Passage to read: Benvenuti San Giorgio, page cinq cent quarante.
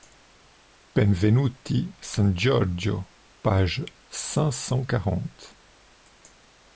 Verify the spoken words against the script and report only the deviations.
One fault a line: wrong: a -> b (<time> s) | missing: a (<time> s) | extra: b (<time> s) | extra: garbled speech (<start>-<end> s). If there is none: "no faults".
no faults